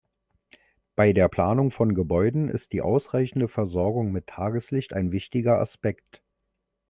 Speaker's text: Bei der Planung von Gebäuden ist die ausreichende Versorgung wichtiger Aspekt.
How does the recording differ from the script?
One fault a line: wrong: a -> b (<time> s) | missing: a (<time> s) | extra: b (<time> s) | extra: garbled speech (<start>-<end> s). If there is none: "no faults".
extra: mit Tageslicht ein (4.1 s)